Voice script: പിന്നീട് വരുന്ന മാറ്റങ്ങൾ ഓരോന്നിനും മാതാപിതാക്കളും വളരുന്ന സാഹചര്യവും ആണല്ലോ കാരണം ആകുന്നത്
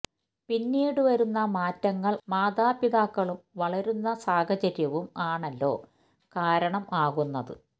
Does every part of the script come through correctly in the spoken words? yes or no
no